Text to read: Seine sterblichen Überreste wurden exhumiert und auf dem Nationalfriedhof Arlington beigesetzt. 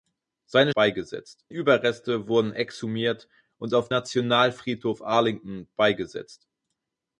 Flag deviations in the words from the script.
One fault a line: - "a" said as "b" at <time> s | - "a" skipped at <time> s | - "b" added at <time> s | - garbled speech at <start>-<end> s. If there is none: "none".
- "sterblichen" said as "beigesetzt" at 0.7 s
- "dem" skipped at 3.9 s